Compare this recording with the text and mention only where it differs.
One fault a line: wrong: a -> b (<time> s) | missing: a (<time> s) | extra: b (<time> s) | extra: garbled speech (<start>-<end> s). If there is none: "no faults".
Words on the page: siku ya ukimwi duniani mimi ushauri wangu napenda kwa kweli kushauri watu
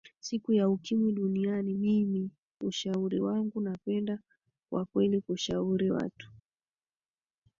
no faults